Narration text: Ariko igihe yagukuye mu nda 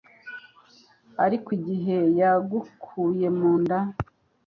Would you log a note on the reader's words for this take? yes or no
no